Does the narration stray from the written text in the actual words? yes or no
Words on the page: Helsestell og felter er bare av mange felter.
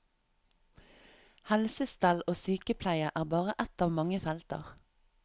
yes